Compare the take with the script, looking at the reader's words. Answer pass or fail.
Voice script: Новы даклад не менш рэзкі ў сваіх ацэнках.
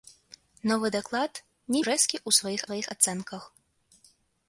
fail